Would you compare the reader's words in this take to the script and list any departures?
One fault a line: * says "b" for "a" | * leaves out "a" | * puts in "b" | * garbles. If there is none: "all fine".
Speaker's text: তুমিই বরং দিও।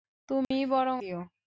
all fine